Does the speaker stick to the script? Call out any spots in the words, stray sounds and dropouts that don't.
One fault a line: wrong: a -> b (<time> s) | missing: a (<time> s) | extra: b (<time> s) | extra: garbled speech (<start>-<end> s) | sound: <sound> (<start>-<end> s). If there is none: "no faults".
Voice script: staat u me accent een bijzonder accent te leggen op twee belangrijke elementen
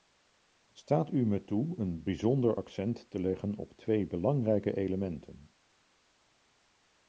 wrong: accent -> toe (1.4 s)